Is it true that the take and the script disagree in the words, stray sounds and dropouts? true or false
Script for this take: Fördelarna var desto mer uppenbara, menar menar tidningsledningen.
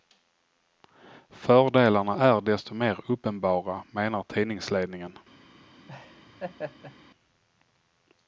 true